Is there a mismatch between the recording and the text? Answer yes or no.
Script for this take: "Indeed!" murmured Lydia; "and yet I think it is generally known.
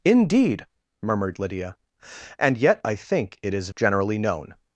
no